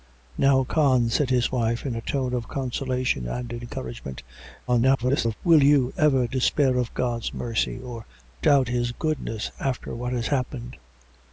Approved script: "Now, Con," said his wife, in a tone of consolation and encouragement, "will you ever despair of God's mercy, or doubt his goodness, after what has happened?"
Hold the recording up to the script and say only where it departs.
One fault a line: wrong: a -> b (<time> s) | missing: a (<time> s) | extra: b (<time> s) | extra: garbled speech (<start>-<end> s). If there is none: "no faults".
extra: garbled speech (4.7-5.4 s)